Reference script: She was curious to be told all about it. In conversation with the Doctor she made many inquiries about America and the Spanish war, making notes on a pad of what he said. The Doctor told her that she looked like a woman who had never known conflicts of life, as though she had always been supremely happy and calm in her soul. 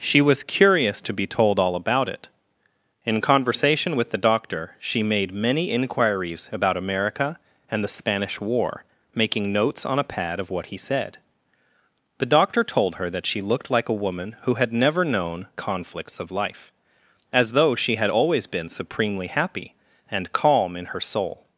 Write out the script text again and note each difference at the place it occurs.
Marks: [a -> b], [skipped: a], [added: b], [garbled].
She was curious to be told all about it. In conversation with the Doctor she made many inquiries about America and the Spanish war, making notes on a pad of what he said. The Doctor told her that she looked like a woman who had never known conflicts of life, as though she had always been supremely happy and calm in her soul.